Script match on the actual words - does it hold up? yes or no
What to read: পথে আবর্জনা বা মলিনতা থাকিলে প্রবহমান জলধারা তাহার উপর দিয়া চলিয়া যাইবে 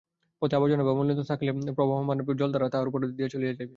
yes